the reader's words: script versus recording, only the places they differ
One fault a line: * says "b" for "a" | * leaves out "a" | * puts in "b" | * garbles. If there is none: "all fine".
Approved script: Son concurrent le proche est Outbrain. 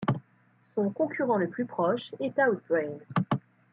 * puts in "plus"